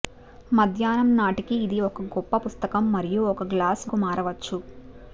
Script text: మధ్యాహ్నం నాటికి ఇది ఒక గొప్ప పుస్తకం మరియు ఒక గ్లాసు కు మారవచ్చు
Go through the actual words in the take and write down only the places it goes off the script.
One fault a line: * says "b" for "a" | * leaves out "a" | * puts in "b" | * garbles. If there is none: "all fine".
all fine